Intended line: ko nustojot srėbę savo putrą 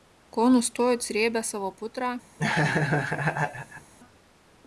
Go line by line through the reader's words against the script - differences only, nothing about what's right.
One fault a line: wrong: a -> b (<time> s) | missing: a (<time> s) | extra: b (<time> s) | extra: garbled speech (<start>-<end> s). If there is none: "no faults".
no faults